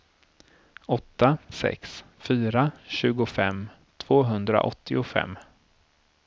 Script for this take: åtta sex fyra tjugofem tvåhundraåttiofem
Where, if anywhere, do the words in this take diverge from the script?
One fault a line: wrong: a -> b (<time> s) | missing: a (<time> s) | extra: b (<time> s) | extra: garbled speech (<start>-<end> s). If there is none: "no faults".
no faults